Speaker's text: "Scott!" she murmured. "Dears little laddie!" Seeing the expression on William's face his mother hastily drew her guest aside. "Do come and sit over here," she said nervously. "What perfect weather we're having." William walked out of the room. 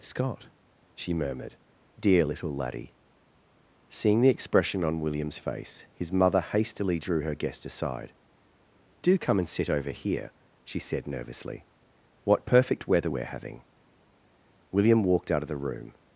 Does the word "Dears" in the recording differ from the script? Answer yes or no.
yes